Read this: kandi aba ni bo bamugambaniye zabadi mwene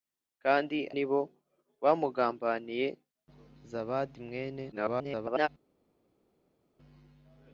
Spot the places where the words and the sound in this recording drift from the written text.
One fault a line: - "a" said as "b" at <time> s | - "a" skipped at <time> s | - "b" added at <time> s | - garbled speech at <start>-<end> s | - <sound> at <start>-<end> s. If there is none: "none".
- "aba" skipped at 0.8 s
- garbled speech at 4.7-5.5 s